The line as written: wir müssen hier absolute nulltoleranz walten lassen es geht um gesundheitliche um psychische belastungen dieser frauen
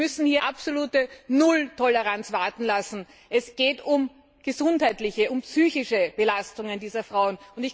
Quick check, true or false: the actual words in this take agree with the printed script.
true